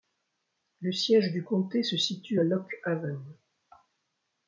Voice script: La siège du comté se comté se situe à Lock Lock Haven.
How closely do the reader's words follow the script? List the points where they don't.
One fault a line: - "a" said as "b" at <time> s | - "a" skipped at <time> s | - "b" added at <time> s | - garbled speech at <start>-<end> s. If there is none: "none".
- "La" said as "Le" at 0.8 s
- "comté se" skipped at 2.0 s
- "Lock" skipped at 2.7 s